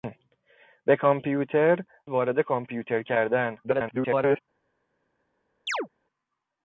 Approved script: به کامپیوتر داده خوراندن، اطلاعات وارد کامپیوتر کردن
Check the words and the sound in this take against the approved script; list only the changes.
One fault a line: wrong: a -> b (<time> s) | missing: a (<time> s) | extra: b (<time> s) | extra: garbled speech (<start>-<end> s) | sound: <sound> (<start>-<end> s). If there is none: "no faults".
missing: داده خوراندن اطلاعات (1.8 s)
extra: garbled speech (3.6-4.4 s)
sound: chirp (5.7-5.9 s)